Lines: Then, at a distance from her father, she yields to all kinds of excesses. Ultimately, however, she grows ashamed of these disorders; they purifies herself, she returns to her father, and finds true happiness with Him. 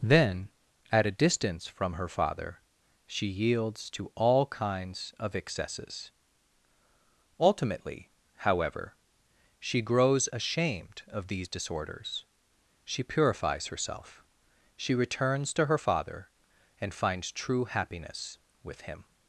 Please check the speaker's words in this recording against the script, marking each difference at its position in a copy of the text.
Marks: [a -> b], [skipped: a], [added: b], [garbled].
Then, at a distance from her father, she yields to all kinds of excesses. Ultimately, however, she grows ashamed of these disorders; [they -> she] purifies herself, she returns to her father, and finds true happiness with Him.